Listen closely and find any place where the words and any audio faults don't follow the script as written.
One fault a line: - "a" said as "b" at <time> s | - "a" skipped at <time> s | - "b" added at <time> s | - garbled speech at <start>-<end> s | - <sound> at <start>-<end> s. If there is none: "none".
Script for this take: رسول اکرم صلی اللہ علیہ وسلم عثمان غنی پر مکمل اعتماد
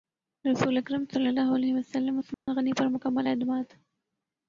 - dropout at 2.3-2.5 s